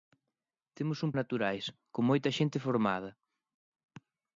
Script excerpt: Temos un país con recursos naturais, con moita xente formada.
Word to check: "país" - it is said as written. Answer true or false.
false